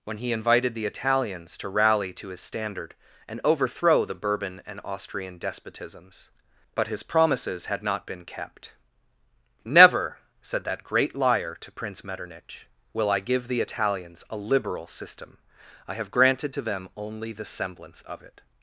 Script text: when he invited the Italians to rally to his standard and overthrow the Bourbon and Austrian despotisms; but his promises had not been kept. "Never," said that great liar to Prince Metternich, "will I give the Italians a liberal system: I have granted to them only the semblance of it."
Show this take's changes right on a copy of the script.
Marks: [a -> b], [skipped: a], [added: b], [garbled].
when he invited the Italians to rally to his standard and overthrow the Bourbon and Austrian despotisms; but his promises had not been kept. "Never," said that great liar to Prince Metternich, "will I give the Italians a liberal system: I have granted to them only the semblance of it."